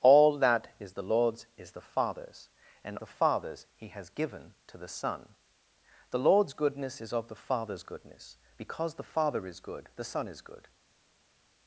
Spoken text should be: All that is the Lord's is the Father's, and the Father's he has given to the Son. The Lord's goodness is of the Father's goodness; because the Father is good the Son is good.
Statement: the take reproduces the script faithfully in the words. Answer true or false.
true